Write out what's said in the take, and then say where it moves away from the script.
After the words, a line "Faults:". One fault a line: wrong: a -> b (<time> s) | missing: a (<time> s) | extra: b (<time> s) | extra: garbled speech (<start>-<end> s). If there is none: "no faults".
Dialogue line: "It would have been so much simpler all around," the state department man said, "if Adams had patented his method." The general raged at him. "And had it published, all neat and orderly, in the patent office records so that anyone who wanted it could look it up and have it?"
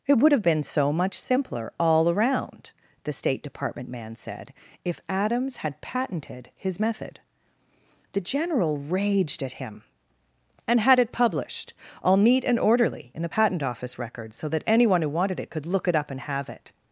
"It would have been so much simpler all around," the state department man said, "if Adams had patented his method." The general raged at him. "And had it published, all neat and orderly, in the patent office records so that anyone who wanted it could look it up and have it?"
Faults:
no faults